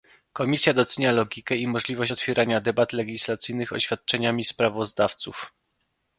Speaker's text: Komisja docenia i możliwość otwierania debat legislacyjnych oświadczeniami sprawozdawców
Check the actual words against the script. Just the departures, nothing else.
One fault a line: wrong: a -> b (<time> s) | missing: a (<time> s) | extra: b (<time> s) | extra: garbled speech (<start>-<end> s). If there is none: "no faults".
extra: logikę (1.1 s)